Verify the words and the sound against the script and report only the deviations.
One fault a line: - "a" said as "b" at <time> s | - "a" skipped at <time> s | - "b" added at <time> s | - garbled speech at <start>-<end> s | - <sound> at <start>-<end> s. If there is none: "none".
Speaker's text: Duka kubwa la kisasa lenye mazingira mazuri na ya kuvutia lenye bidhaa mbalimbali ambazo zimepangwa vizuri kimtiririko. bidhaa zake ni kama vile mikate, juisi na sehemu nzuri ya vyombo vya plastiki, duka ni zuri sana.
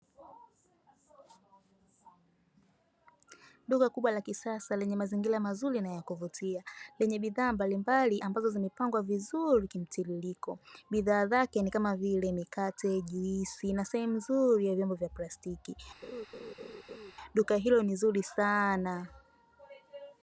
- laugh at 16.0-17.1 s
- "hilo" added at 17.6 s